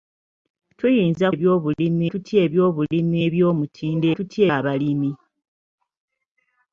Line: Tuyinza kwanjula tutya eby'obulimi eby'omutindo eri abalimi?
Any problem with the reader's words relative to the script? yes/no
yes